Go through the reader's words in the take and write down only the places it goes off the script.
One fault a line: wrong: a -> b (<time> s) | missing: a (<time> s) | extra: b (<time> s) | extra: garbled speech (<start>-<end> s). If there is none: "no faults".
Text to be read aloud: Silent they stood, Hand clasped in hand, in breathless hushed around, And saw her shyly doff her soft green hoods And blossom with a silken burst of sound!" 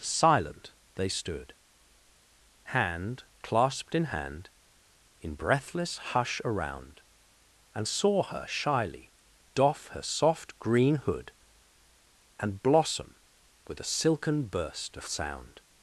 wrong: hushed -> hush (6.0 s)
wrong: hoods -> hood (11.0 s)